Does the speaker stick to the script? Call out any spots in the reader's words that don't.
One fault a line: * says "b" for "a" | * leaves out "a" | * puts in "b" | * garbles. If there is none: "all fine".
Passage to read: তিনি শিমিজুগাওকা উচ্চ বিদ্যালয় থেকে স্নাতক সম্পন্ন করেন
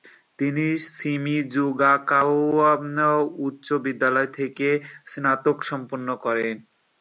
all fine